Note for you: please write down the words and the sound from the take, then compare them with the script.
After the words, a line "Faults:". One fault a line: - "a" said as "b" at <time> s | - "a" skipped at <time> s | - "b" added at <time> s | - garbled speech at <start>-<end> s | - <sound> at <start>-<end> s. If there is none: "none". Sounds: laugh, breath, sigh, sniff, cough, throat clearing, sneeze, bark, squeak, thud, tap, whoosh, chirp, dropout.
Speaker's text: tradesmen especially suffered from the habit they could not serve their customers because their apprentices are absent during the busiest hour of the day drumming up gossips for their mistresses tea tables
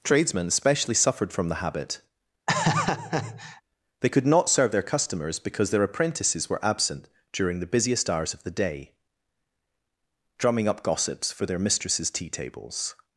tradesmen especially suffered from the habit they could not serve their customers because their apprentices were absent during the busiest hours of the day drumming up gossips for their mistresses tea tables
Faults:
- laugh at 2.5-3.6 s
- "are" said as "were" at 6.5 s
- "hour" said as "hours" at 8.1 s